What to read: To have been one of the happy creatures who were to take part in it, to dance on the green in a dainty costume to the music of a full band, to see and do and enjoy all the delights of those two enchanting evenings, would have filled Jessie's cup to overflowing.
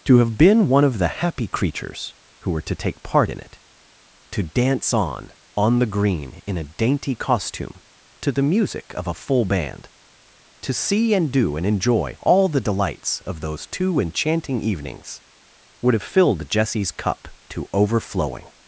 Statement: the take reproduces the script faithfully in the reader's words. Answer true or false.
false